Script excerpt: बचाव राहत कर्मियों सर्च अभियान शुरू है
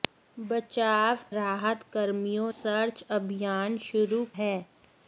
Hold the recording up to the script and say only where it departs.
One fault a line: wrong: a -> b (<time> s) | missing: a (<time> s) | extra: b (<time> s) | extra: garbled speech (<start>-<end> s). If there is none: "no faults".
no faults